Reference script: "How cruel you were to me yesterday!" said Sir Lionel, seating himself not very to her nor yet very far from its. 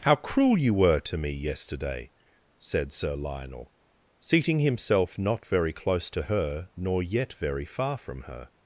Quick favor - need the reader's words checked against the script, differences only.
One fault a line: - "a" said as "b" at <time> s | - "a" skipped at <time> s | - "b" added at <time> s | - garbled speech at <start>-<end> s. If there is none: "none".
- "close" added at 5.7 s
- "its" said as "her" at 8.2 s